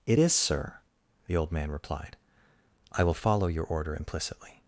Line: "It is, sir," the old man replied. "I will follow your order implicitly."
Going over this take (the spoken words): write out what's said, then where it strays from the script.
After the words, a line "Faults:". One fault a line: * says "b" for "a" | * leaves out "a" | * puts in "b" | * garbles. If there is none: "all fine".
"It is, sir," the old man replied. "I will follow your order implicitly."
Faults:
all fine